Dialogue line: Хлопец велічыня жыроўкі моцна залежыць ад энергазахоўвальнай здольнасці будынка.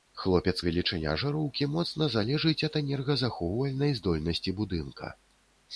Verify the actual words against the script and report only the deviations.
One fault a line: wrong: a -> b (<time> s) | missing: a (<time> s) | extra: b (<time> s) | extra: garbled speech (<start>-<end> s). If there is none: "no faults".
no faults